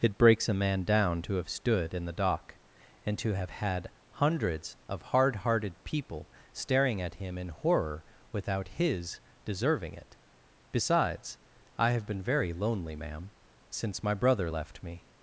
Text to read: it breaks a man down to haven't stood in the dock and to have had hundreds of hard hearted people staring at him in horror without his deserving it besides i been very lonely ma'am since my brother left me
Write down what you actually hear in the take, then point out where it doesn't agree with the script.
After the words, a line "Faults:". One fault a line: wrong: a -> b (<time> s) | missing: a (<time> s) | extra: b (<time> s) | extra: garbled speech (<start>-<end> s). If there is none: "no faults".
it breaks a man down to have stood in the dock and to have had hundreds of hard hearted people staring at him in horror without his deserving it besides i have been very lonely ma'am since my brother left me
Faults:
wrong: haven't -> have (1.4 s)
extra: have (11.9 s)